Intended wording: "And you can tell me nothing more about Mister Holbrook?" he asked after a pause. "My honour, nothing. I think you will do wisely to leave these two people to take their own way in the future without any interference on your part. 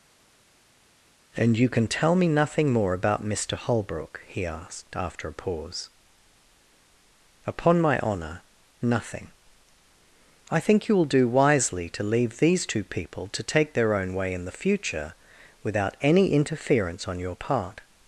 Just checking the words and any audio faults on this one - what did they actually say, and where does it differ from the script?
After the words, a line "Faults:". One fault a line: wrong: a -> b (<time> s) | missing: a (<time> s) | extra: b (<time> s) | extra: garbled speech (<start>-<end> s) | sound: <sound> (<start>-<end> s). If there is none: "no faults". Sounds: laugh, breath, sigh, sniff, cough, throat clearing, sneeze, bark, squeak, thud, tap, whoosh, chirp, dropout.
"And you can tell me nothing more about Mister Holbrook?" he asked after a pause. "Upon my honour, nothing. I think you will do wisely to leave these two people to take their own way in the future without any interference on your part.
Faults:
extra: Upon (7.5 s)